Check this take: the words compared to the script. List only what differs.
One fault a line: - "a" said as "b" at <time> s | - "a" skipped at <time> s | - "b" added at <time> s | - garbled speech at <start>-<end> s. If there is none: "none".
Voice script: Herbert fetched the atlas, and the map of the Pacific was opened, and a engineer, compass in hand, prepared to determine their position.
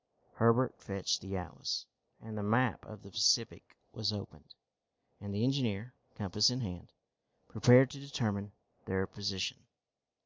- "a" said as "the" at 5.3 s